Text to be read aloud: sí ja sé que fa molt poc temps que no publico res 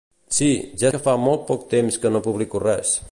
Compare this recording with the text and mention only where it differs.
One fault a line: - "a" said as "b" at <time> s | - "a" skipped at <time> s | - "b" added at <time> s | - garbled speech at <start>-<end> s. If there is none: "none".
- "sé" skipped at 0.9 s